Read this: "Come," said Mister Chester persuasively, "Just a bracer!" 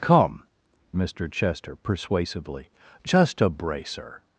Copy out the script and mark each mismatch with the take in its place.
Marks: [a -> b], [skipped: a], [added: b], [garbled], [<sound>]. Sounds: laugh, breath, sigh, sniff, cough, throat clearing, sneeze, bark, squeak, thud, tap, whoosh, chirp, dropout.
"Come," [skipped: said] Mister Chester persuasively, "Just a bracer!"